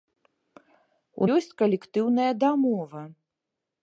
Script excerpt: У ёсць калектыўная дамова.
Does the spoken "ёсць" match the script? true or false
true